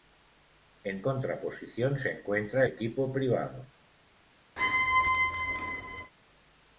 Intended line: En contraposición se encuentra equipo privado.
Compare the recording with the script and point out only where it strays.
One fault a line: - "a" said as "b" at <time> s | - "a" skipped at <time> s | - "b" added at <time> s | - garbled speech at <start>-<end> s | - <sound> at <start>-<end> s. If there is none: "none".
- squeak at 4.6-6.1 s